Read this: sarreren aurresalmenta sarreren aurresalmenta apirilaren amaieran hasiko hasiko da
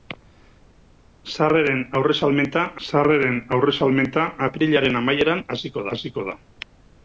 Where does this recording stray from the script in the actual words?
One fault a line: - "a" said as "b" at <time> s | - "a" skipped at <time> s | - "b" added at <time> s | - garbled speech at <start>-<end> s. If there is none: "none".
none